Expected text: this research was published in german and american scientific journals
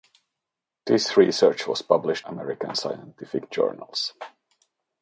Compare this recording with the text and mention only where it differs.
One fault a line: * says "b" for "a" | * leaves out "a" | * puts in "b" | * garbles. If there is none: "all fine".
* leaves out "in german and"